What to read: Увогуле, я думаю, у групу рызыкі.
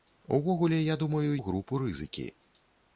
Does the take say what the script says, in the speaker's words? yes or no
yes